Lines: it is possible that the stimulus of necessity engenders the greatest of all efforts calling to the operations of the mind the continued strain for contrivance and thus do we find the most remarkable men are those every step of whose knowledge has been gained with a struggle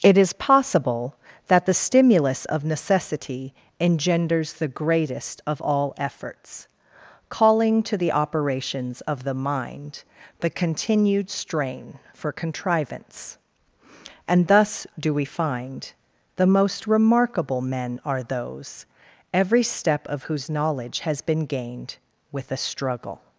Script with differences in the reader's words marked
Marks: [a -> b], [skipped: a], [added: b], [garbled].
it is possible that the stimulus of necessity engenders the greatest of all efforts calling to the operations of the mind the continued strain for contrivance and thus do we find the most remarkable men are those every step of whose knowledge has been gained with a struggle